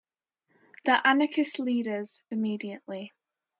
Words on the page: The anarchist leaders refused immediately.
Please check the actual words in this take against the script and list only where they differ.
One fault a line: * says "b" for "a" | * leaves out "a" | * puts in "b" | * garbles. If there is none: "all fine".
* leaves out "refused"